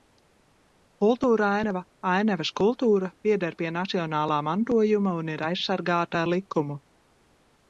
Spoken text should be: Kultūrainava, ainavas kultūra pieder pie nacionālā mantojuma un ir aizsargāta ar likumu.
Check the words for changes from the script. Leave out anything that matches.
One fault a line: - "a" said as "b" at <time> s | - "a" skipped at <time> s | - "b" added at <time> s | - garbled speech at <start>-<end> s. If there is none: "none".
none